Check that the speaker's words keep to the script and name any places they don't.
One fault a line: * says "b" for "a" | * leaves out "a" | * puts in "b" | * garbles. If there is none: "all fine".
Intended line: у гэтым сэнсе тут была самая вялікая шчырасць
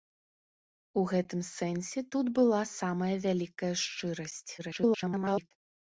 * garbles